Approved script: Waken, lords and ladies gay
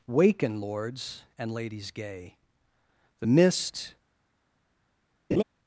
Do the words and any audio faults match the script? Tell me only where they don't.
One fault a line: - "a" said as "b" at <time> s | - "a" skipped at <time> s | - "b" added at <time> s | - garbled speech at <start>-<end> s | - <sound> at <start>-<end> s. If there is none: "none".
- "The mist" added at 3.2 s
- laugh at 5.3-5.4 s